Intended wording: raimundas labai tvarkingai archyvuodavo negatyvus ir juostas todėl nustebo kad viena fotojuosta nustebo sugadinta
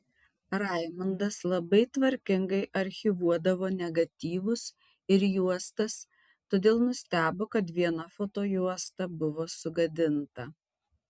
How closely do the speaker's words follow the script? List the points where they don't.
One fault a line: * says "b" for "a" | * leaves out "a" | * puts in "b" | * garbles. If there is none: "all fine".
* says "buvo" for "nustebo"